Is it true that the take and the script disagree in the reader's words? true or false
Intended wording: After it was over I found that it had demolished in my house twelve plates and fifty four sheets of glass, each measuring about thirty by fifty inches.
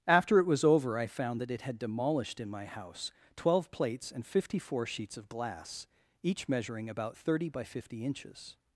false